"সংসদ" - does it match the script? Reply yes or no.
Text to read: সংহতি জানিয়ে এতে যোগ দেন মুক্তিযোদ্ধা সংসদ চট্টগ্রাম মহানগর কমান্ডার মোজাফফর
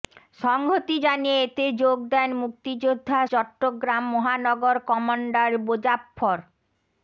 no